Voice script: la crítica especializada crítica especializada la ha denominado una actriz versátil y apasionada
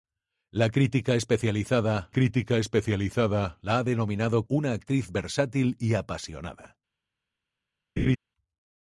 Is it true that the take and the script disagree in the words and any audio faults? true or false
true